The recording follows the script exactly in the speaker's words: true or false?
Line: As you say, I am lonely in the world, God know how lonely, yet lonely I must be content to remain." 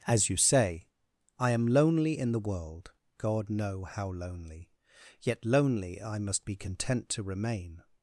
true